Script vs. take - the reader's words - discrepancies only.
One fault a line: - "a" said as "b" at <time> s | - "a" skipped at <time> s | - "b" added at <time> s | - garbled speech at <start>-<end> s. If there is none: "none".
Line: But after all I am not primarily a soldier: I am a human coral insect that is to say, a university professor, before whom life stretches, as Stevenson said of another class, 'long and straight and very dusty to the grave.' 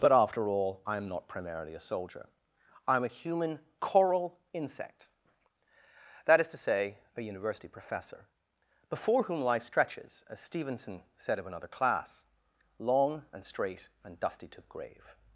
- "very" skipped at 14.2 s